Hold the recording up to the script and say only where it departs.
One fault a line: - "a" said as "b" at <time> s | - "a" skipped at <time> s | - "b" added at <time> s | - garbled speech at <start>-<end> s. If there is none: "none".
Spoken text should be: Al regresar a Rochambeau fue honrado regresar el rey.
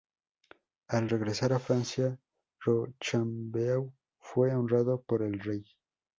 - "Francia" added at 1.6 s
- "regresar" said as "por" at 5.0 s